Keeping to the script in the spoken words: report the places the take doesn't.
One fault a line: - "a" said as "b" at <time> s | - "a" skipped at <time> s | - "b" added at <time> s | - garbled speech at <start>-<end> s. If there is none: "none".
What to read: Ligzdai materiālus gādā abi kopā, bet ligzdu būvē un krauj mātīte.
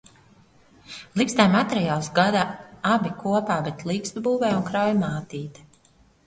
none